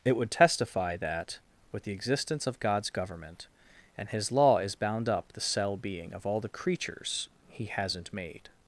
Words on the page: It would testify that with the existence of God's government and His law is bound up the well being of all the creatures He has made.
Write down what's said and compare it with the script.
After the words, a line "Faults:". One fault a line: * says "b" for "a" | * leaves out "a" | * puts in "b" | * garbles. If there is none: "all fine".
It would testify that with the existence of God's government and His law is bound up the cell being of all the creatures He hasn't made.
Faults:
* says "cell" for "well"
* says "hasn't" for "has"